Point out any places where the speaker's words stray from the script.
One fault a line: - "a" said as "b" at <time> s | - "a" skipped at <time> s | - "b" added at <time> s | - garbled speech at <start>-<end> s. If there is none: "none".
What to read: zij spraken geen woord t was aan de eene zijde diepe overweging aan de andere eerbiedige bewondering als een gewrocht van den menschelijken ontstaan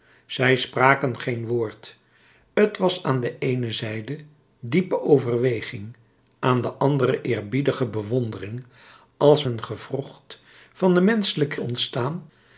none